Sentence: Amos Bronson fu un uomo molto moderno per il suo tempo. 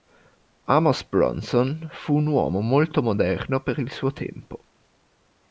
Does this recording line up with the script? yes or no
yes